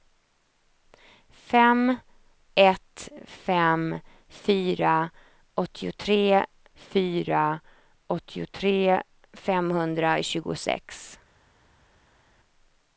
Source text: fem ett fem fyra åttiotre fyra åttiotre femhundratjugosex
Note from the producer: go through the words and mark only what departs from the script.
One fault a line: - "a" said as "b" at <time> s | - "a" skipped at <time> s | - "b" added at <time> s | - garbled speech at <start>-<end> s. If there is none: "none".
none